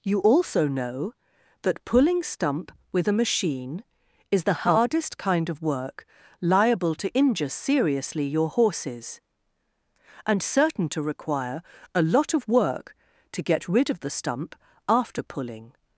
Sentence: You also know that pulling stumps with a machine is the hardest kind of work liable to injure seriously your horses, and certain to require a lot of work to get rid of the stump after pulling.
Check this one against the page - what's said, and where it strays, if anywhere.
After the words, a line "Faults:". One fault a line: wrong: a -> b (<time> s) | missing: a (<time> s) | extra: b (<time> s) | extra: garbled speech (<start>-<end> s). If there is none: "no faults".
You also know that pulling stump with a machine is the hardest kind of work liable to injure seriously your horses, and certain to require a lot of work to get rid of the stump after pulling.
Faults:
wrong: stumps -> stump (2.2 s)